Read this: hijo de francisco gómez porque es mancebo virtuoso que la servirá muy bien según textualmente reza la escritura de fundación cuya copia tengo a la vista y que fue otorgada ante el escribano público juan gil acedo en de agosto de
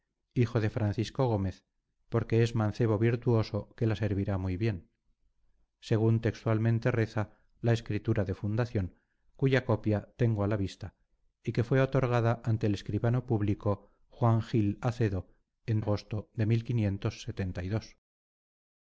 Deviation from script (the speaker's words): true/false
true